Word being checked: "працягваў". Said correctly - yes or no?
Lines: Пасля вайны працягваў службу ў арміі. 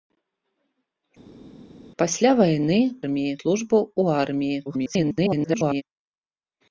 no